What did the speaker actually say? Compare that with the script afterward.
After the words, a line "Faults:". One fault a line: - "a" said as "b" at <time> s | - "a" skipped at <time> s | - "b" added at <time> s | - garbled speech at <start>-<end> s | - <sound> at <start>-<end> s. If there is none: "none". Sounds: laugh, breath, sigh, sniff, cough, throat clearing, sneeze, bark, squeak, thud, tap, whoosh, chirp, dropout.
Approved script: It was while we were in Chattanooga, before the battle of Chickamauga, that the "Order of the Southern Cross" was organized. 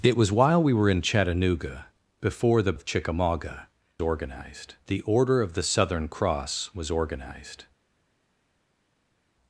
It was while we were in Chattanooga, before the of Chickamauga, organized the "Order of the Southern Cross" was organized.
Faults:
- "battle" skipped at 2.7 s
- "that" said as "organized" at 4.0 s